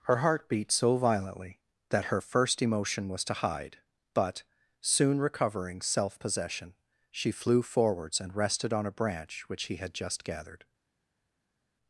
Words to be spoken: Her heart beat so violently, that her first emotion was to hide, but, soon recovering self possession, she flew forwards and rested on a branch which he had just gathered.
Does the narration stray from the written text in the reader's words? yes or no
no